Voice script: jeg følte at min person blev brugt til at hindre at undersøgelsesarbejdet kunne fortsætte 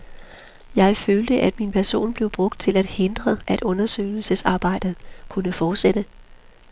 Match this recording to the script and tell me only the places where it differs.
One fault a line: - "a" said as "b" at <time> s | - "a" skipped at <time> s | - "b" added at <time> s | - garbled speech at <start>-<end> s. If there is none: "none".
none